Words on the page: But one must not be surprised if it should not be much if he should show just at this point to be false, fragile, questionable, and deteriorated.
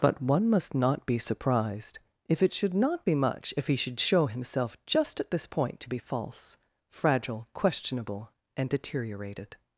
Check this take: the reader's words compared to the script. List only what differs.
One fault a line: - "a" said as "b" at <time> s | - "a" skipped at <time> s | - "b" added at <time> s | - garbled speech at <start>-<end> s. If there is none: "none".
- "himself" added at 4.3 s